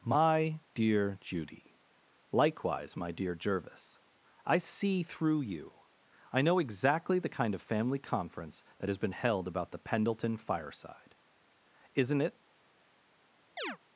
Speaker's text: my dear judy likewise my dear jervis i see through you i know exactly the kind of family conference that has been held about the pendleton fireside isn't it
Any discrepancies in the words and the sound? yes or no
yes